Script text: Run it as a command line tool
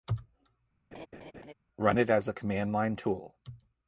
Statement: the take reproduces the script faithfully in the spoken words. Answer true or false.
true